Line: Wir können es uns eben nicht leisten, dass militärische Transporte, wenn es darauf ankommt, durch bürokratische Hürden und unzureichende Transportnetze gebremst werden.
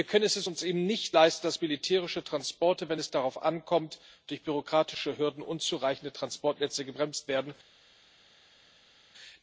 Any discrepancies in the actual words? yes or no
no